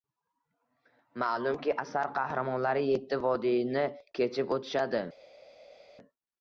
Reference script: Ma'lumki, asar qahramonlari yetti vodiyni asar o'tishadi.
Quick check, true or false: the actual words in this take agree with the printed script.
false